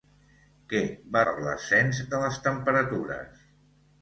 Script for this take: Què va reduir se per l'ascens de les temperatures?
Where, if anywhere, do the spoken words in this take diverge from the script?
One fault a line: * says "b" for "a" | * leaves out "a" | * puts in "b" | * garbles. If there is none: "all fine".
* leaves out "reduir se"